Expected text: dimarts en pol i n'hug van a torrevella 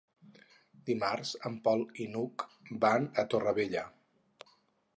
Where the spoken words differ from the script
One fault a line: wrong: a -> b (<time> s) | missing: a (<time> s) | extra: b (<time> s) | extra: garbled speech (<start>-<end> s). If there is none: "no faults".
no faults